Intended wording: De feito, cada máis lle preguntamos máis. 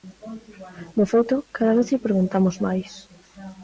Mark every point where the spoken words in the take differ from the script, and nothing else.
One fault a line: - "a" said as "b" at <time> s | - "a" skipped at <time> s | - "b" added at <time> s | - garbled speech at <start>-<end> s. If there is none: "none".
- "máis" said as "vez" at 1.8 s